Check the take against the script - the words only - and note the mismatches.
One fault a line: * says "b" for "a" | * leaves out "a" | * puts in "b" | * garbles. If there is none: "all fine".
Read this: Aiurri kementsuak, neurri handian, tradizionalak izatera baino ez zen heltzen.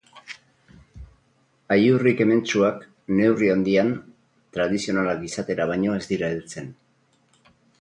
* says "dira" for "zen"